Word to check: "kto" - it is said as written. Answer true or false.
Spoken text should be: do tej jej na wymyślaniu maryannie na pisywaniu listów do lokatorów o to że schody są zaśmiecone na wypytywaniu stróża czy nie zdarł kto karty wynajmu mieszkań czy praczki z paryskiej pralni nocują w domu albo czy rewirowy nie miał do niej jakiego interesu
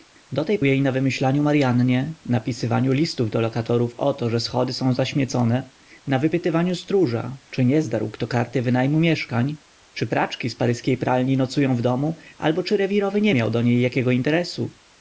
true